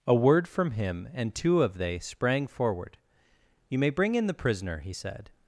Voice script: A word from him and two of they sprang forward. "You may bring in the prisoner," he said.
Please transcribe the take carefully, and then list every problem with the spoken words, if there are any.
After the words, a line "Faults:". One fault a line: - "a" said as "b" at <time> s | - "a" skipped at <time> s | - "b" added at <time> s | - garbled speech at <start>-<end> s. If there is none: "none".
A word from him and two of they sprang forward. "You may bring in the prisoner," he said.
Faults:
none